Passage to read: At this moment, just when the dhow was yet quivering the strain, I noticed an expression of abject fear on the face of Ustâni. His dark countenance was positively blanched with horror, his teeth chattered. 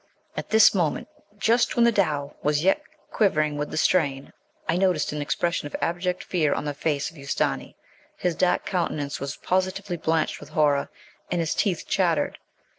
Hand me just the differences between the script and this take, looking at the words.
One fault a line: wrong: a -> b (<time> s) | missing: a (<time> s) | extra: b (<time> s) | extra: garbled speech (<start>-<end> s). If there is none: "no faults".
extra: with (3.5 s)
extra: and (11.3 s)